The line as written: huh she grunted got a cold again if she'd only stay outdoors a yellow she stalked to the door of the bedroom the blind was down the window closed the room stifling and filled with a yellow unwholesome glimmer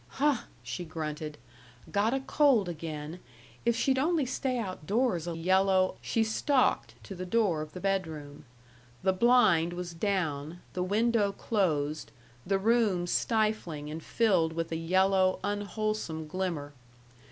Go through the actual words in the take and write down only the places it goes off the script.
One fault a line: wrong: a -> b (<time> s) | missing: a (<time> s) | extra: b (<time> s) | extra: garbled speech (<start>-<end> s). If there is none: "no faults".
no faults